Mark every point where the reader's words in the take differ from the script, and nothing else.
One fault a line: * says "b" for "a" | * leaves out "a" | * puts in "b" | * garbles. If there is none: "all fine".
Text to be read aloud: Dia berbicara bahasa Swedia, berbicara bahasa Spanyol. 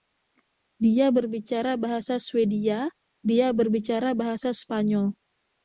* puts in "dia"